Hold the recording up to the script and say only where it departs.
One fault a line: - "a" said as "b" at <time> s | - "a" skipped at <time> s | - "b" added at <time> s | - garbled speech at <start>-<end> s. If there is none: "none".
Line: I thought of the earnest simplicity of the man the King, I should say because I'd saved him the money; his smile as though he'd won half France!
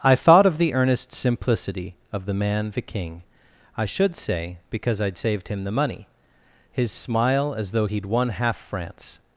none